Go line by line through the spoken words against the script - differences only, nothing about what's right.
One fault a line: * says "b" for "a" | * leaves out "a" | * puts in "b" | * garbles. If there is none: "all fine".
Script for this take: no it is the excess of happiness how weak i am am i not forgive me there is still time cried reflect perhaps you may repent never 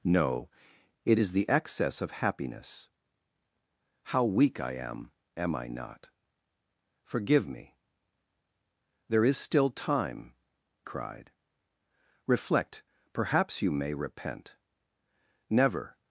all fine